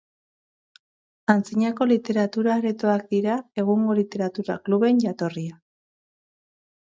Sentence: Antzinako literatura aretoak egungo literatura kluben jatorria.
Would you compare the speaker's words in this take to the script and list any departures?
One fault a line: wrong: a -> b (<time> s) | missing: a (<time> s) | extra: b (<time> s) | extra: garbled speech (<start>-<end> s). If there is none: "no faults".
extra: dira (3.1 s)